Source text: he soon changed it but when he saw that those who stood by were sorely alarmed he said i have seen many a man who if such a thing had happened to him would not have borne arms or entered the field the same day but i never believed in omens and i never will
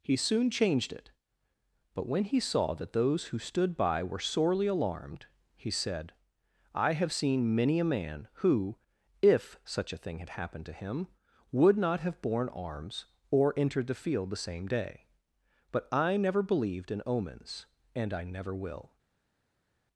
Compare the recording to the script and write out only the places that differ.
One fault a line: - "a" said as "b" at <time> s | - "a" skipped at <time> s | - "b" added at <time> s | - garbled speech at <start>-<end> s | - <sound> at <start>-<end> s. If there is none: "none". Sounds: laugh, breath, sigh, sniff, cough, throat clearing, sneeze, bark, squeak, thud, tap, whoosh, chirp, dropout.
none